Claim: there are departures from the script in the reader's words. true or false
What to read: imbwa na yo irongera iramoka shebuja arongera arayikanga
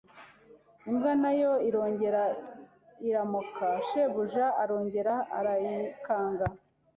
false